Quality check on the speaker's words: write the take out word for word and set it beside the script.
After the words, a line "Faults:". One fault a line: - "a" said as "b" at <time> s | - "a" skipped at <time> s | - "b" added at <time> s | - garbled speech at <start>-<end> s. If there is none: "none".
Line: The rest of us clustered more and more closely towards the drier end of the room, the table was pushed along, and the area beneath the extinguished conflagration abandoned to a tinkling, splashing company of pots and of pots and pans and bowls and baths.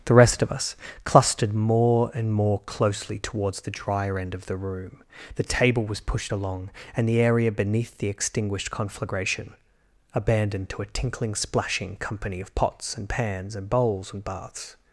The rest of us clustered more and more closely towards the drier end of the room, the table was pushed along, and the area beneath the extinguished conflagration abandoned to a tinkling, splashing company of pots and pans and bowls and baths.
Faults:
- "of pots and" skipped at 13.1 s